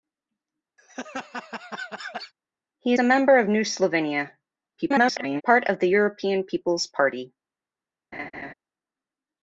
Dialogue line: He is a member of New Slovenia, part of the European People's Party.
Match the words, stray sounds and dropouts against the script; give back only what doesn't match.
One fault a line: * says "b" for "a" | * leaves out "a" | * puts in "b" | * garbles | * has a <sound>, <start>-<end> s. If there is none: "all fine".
* has a laugh, 0.8-2.3 s
* leaves out "is"
* garbles
* has a laugh, 8.1-8.5 s